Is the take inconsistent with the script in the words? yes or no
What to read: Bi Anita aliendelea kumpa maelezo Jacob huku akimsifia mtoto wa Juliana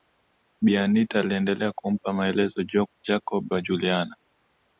yes